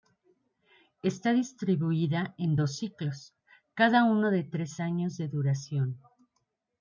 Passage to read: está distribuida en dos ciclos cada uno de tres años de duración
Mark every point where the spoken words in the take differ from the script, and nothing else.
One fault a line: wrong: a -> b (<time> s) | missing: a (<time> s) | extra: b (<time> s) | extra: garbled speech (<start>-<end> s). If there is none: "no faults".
no faults